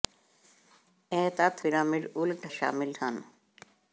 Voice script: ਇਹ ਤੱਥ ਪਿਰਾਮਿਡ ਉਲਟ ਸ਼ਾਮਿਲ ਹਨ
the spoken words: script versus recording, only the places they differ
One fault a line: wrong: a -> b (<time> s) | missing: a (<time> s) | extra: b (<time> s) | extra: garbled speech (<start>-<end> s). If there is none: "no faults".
no faults